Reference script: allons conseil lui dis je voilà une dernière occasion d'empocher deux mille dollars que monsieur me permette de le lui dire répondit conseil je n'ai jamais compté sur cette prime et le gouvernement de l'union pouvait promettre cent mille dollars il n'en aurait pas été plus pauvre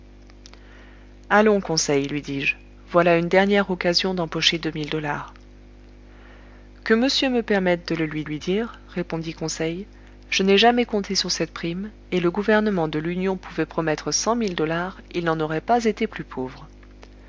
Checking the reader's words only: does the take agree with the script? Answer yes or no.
no